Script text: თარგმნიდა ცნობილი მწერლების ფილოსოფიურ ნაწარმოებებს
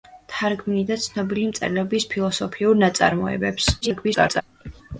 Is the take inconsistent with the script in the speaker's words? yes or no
yes